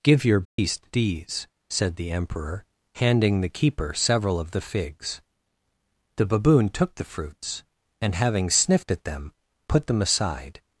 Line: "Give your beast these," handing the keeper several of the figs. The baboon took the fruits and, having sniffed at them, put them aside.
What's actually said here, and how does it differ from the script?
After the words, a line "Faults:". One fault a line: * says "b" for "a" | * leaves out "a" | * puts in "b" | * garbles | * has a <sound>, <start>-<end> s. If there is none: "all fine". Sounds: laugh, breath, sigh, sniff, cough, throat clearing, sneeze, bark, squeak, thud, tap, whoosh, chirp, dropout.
"Give your beast these," said the Emperor, handing the keeper several of the figs. The baboon took the fruits and, having sniffed at them, put them aside.
Faults:
* has a dropout, 0.5-0.6 s
* puts in "said the Emperor"